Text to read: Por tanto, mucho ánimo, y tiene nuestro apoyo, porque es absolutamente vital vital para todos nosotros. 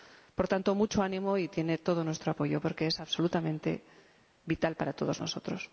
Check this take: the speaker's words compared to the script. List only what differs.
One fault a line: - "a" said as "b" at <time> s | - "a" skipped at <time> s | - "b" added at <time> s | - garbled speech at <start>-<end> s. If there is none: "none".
- "todo" added at 1.8 s
- "vital" skipped at 4.8 s